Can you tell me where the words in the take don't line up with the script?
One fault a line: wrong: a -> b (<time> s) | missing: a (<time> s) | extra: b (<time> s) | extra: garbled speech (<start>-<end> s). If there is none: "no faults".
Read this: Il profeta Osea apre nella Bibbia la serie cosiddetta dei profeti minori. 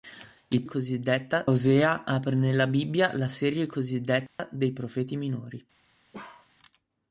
wrong: profeta -> cosiddetta (0.6 s)